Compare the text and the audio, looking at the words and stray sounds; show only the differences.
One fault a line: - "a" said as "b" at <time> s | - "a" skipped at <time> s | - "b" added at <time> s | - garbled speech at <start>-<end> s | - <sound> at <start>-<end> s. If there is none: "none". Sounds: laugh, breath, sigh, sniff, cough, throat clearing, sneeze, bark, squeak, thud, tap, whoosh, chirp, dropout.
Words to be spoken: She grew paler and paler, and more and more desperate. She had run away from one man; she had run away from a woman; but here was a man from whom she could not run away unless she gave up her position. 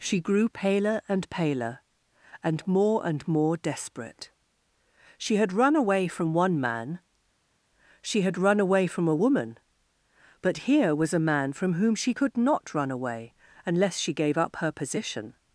none